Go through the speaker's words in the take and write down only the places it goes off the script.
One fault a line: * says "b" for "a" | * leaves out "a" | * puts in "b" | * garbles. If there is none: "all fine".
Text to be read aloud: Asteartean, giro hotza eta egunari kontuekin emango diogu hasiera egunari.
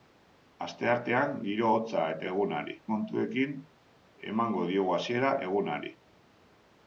all fine